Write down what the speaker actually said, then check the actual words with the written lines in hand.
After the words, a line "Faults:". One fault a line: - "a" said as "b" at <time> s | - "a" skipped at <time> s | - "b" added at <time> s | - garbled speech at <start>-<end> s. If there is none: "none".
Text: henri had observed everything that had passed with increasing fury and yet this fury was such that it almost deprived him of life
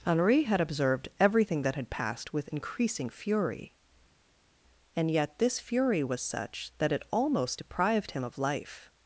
henri had observed everything that had passed with increasing fury and yet this fury was such that it almost deprived him of life
Faults:
none